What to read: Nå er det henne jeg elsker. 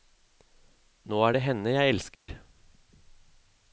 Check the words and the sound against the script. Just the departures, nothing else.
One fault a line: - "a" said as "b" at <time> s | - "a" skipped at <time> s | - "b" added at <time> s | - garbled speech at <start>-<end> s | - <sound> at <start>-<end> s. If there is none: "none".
- dropout at 2.1-2.3 s